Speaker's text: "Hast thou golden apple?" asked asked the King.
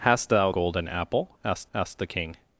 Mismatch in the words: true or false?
false